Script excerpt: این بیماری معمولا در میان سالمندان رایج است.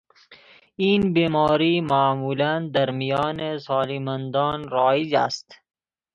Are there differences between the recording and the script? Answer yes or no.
no